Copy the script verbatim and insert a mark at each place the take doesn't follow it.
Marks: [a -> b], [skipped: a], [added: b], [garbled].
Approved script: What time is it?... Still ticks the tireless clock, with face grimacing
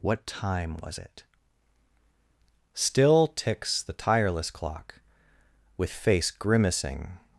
What time [is -> was] it?... Still ticks the tireless clock, with face grimacing